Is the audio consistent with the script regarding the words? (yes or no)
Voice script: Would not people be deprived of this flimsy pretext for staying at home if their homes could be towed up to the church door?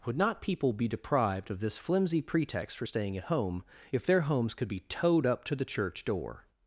yes